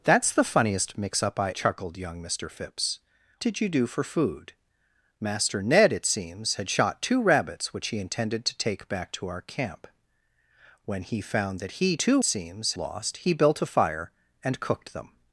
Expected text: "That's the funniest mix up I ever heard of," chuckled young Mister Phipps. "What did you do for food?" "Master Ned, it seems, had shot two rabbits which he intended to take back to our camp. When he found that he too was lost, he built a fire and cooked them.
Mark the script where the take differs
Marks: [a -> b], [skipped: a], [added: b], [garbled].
"That's the funniest mix up I [skipped: ever heard of,"] chuckled young Mister Phipps. [skipped: "What] did you do for food?" "Master Ned, it seems, had shot two rabbits which he intended to take back to our camp. When he found that he too [was -> seems] lost, he built a fire and cooked them.